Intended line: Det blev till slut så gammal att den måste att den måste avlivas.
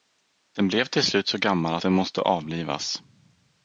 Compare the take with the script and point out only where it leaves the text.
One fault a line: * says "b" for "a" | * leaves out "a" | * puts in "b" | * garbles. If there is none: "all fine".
* says "Den" for "Det"
* leaves out "att den måste"